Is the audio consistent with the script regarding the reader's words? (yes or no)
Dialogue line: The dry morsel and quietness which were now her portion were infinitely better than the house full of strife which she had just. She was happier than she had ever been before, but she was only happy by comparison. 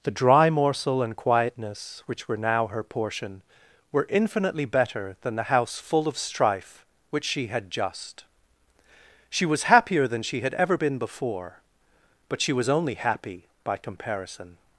yes